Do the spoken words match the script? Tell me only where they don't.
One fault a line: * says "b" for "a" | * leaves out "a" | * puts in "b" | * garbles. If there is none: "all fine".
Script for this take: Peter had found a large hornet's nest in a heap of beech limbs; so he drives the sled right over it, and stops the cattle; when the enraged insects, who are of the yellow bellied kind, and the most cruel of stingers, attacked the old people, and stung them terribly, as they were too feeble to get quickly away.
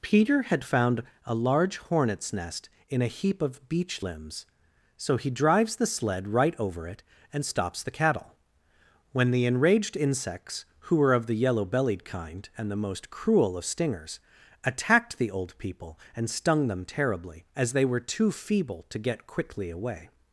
* says "were" for "are"